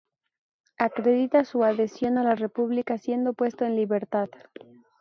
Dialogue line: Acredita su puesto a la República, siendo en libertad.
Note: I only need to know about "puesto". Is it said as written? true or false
false